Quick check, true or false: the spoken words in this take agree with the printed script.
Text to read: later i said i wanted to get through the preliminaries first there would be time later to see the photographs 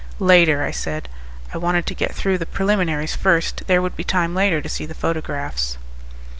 true